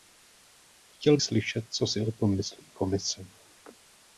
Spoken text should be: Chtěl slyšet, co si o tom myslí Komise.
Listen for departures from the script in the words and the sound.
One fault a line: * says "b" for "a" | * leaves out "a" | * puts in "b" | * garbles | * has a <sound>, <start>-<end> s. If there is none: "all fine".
all fine